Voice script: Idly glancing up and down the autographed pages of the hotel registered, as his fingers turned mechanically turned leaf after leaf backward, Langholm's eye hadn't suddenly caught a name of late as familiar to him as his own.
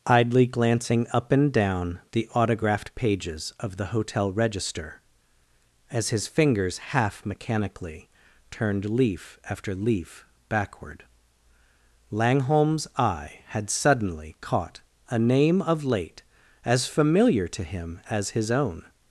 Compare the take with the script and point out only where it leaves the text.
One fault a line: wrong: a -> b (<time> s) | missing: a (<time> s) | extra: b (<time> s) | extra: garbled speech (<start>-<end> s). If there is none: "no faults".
wrong: registered -> register (4.3 s)
wrong: turned -> half (6.8 s)
wrong: hadn't -> had (13.5 s)